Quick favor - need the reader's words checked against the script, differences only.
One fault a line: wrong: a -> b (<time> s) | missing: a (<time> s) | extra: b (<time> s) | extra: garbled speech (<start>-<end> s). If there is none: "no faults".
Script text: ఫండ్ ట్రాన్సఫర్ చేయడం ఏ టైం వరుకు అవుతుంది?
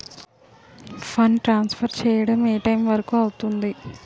no faults